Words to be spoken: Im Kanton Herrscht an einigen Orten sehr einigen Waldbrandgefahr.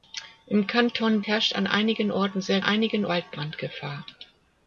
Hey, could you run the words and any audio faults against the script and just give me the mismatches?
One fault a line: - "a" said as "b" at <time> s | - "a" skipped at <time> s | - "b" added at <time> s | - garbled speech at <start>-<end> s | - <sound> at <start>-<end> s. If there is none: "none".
none